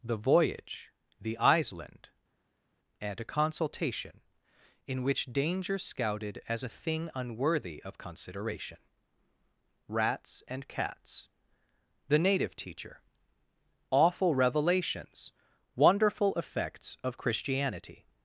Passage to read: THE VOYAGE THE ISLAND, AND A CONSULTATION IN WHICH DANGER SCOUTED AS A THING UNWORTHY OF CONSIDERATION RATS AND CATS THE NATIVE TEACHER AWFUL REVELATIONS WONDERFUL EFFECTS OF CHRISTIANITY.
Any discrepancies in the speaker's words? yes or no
no